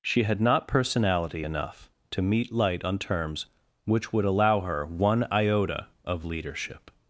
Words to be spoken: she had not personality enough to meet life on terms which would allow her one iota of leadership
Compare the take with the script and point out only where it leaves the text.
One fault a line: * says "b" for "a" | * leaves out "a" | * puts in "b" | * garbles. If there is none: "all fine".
* says "light" for "life"